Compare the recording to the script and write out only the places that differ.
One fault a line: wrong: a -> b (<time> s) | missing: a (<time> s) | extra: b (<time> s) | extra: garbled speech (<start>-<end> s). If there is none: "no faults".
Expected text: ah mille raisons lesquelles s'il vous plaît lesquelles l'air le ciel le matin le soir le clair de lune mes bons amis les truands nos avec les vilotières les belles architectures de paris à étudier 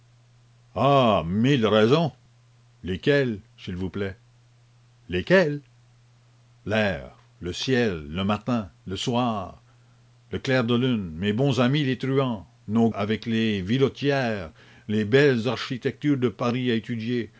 no faults